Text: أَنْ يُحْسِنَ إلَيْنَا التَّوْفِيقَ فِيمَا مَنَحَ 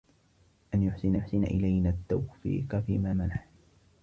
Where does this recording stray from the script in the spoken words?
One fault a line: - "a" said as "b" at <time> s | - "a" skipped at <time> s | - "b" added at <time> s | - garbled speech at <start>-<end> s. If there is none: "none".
- "يُحْسِنَ" added at 1.1 s